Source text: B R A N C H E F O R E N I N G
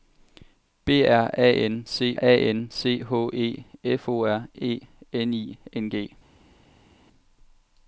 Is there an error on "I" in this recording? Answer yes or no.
no